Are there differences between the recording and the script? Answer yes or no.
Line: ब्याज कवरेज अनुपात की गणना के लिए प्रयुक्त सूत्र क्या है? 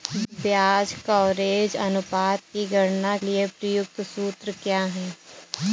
yes